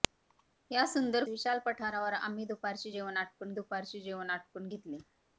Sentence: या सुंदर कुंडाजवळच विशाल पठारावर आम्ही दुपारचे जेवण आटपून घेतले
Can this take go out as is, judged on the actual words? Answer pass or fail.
fail